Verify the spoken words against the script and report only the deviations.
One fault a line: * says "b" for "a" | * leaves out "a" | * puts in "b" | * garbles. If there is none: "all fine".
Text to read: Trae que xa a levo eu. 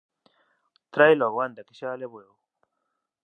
* puts in "logo anda"